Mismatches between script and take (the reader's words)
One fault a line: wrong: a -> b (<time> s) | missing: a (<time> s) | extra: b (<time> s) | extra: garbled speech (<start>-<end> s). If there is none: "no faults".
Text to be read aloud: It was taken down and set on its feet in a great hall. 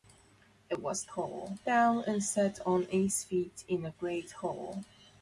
wrong: taken -> hall (1.1 s)